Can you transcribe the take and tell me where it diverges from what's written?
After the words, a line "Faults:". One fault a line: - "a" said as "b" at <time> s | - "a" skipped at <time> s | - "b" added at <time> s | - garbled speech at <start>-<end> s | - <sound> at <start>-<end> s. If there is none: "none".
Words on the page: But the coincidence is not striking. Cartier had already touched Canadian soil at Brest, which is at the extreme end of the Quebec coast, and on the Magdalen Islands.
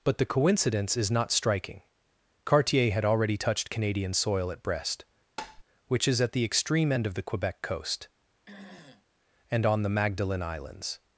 But the coincidence is not striking. Cartier had already touched Canadian soil at Brest, which is at the extreme end of the Quebec coast, and on the Magdalen Islands.
Faults:
- tap at 5.4-5.6 s
- throat clearing at 8.5-9.0 s